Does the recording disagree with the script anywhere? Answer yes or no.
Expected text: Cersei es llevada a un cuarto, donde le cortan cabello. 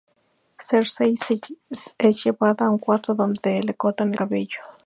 no